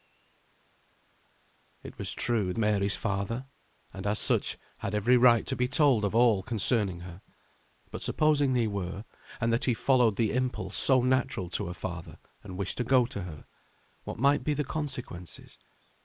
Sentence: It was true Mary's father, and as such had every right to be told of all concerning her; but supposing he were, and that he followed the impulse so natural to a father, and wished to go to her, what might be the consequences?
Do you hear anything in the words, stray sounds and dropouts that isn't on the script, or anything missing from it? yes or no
no